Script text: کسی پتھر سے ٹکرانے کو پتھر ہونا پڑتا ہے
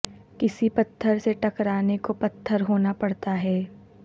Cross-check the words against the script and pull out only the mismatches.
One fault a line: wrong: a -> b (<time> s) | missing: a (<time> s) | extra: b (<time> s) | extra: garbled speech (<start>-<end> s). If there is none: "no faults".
no faults